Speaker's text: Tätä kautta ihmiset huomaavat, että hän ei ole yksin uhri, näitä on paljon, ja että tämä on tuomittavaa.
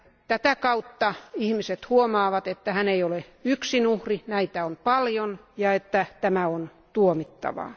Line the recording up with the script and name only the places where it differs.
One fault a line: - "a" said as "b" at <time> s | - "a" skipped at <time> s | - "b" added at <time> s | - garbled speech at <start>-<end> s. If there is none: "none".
none